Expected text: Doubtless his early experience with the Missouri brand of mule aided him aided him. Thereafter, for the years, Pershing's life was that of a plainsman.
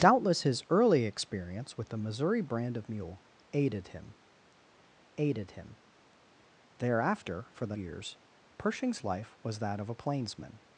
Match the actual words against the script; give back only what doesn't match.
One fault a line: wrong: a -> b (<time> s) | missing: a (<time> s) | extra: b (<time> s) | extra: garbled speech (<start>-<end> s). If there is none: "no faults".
no faults